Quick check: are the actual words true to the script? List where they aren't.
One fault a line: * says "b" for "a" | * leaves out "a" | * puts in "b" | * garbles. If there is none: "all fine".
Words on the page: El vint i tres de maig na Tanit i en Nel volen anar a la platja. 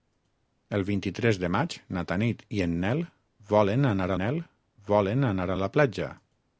* puts in "Nel volen anar"